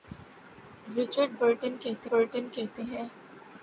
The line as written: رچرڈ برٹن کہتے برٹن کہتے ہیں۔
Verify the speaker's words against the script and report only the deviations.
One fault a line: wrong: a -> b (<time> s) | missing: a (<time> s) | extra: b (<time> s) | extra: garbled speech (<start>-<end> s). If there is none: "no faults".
no faults